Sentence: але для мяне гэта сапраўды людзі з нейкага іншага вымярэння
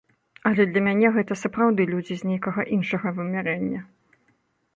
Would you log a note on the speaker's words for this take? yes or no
no